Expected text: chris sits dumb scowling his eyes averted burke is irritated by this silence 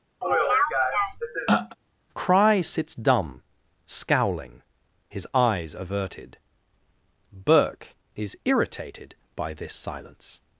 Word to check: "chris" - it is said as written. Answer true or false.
false